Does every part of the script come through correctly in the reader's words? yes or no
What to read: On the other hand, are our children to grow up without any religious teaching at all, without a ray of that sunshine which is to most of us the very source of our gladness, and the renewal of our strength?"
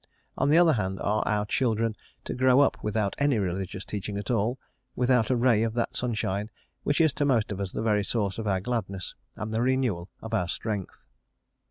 yes